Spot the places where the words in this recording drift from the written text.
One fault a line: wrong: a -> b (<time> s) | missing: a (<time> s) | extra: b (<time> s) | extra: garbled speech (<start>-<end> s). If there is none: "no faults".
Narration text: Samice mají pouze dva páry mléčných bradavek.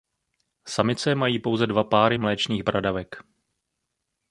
no faults